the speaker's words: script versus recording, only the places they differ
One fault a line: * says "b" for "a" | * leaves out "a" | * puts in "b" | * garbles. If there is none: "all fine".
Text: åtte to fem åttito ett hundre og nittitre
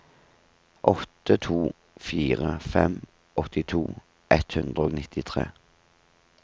* puts in "fire"